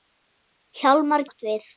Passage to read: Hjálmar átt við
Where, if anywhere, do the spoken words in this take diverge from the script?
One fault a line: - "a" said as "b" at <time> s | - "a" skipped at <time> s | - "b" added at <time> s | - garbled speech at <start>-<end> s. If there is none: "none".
none